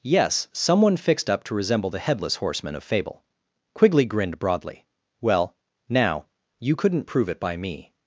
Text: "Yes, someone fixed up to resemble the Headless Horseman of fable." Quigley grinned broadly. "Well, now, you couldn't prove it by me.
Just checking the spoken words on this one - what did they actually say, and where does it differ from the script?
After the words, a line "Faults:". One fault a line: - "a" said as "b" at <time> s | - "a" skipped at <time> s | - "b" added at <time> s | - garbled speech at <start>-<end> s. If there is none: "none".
"Yes, someone fixed up to resemble the Headless Horseman of fable." Quigley grinned broadly. "Well, now, you couldn't prove it by me.
Faults:
none